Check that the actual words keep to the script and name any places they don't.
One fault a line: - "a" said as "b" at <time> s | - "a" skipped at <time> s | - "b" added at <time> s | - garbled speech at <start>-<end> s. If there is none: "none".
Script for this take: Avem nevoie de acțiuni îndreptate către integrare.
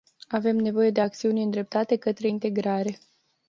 none